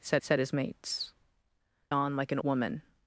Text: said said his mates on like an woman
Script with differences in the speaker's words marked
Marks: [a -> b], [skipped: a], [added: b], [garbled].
said said his mates on like an woman